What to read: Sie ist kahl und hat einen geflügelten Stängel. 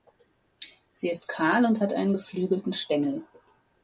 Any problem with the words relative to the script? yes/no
no